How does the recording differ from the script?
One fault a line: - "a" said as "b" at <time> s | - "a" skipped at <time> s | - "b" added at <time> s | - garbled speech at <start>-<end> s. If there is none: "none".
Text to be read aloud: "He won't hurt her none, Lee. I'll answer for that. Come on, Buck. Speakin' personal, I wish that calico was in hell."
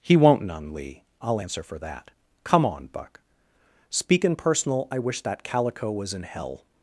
- "hurt her" skipped at 0.4 s